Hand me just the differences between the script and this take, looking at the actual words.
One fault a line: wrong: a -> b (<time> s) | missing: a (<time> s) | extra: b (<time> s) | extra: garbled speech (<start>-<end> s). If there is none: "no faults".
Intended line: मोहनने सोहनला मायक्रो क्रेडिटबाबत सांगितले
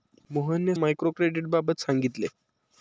missing: सोहनला (0.8 s)